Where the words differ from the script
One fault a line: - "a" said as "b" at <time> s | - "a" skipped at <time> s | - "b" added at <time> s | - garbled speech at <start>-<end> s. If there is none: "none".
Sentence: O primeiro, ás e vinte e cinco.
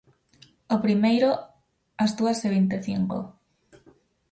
- "dúas" added at 2.2 s